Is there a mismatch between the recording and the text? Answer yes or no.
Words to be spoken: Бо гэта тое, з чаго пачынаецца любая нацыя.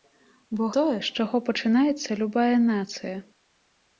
yes